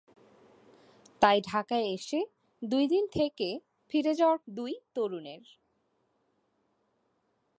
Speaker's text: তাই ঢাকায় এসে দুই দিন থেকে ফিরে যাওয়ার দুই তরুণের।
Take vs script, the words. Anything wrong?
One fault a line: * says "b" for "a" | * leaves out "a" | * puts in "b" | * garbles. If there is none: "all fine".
all fine